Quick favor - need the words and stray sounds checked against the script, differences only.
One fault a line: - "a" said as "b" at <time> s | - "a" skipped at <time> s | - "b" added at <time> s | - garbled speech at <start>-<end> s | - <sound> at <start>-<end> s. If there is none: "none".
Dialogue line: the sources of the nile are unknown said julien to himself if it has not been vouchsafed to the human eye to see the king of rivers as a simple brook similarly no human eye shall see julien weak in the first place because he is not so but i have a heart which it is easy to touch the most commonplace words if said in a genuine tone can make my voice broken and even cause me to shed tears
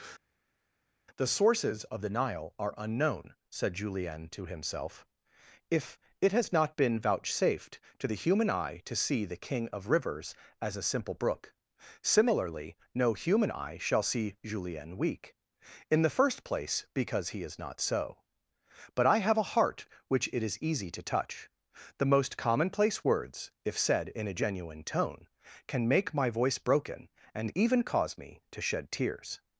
none